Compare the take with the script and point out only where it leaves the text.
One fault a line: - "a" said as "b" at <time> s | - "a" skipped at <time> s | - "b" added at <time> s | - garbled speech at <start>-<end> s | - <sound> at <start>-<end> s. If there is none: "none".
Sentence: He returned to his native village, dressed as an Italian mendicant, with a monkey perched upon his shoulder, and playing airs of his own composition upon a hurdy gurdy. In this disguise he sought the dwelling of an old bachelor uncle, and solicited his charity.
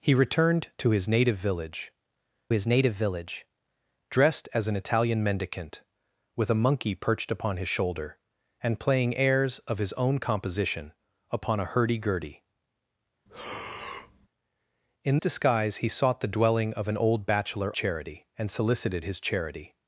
- "his native village" added at 2.5 s
- breath at 13.3-14.3 s
- "this" skipped at 15.2 s
- "uncle" said as "charity" at 17.7 s